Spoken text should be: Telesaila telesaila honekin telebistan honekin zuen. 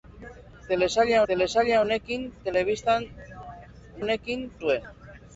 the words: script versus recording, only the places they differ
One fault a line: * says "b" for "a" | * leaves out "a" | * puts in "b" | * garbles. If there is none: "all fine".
all fine